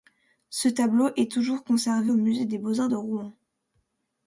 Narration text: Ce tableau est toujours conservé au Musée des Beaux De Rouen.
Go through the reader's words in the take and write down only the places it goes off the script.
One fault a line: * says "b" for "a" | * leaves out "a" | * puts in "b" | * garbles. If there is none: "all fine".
* puts in "Arts"